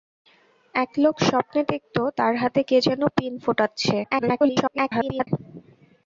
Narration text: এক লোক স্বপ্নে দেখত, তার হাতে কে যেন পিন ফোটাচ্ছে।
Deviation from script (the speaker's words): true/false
true